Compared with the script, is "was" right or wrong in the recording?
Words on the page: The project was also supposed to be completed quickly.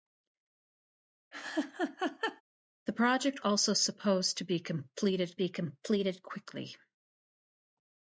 wrong